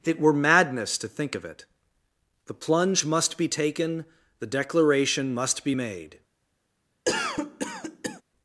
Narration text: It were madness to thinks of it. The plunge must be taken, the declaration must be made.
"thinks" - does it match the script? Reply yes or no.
no